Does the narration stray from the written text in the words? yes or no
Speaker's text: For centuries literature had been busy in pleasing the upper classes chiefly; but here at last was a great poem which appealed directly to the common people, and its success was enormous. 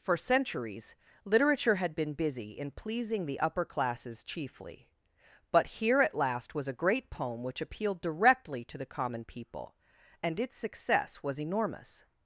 no